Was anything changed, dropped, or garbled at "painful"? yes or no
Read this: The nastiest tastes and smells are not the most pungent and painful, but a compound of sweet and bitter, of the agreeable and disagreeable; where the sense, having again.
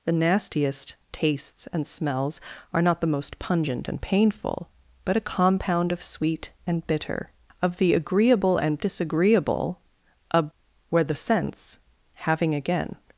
no